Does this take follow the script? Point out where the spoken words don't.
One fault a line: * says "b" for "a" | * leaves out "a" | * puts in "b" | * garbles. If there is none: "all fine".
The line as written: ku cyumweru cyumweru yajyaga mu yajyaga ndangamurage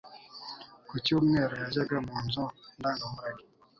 * leaves out "cyumweru"
* says "nzu" for "yajyaga"